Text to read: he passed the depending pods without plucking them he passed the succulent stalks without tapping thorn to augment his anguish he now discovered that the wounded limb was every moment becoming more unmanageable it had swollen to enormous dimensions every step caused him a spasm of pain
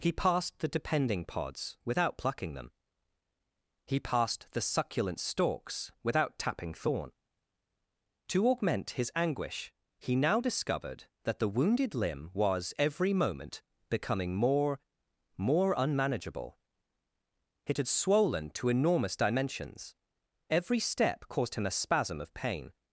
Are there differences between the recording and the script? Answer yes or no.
yes